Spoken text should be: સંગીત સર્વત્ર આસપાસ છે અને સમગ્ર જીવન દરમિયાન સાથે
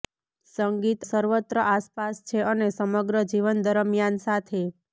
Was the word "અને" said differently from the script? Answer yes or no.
no